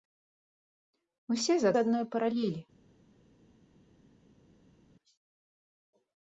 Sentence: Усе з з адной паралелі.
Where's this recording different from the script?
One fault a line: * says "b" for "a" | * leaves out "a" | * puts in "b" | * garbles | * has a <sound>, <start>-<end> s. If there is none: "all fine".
all fine